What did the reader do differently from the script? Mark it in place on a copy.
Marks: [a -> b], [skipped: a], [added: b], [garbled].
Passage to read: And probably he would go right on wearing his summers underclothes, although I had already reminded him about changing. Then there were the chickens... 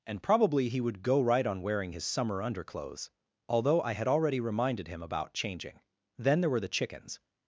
And probably he would go right on wearing his [summers -> summer] underclothes, although I had already reminded him about changing. Then there were the chickens...